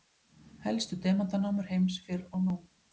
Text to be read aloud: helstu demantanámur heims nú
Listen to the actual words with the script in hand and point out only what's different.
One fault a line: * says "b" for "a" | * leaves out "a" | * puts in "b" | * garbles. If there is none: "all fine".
* puts in "fyrr og"